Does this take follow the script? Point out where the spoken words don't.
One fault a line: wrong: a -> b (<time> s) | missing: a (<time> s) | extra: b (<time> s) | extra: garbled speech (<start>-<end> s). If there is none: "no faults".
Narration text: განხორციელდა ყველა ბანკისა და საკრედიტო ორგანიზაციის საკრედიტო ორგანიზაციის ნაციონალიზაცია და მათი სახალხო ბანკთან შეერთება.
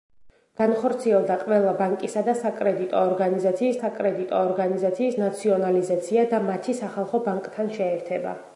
no faults